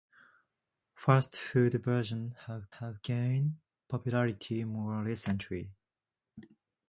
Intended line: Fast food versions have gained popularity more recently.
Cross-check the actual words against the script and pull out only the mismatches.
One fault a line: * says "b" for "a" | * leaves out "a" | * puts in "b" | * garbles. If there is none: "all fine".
* puts in "have"